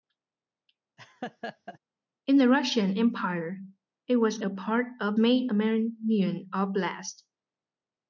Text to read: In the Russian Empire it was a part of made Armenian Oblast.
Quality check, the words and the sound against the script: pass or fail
fail